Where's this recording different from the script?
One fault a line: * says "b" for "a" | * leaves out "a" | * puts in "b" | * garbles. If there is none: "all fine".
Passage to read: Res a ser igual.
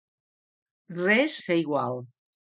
all fine